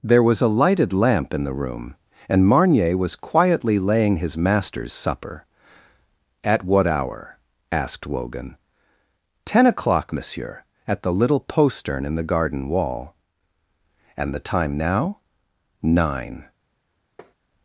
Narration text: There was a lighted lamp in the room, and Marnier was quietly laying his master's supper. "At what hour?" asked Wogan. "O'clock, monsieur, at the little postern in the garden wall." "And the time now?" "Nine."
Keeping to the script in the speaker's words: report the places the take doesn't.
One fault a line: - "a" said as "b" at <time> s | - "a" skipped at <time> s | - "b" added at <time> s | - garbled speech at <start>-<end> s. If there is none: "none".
- "Ten" added at 9.5 s